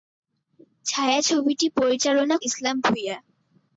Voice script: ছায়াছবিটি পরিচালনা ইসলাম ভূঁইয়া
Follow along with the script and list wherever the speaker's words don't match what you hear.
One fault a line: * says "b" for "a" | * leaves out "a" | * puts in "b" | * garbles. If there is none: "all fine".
all fine